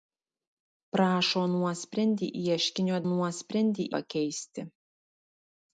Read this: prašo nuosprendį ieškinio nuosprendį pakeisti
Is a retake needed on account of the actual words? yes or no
no